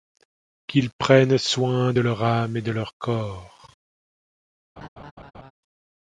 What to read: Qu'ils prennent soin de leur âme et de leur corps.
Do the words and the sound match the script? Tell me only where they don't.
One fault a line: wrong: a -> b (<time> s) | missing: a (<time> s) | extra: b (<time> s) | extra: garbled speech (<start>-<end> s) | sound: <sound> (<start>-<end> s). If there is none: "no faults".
sound: laugh (4.8-5.5 s)